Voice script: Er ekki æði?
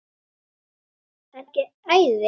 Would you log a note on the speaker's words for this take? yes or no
no